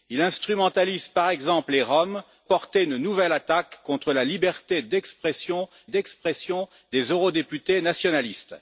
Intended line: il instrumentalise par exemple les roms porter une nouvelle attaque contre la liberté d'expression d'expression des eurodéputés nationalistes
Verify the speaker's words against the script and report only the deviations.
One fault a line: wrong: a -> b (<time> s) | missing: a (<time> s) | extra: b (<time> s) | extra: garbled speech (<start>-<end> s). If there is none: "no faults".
no faults